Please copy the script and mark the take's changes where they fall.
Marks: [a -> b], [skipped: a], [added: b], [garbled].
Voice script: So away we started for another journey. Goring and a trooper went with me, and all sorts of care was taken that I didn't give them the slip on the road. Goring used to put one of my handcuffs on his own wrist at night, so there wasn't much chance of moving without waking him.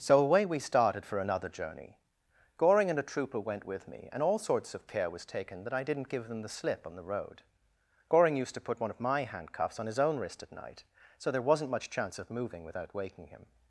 So away we started for another journey. Goring and a trooper went with me, and all sorts of care was taken that I didn't give them the slip on the road. Goring used to put one of my handcuffs on his own wrist at night, so there wasn't much chance of moving without waking him.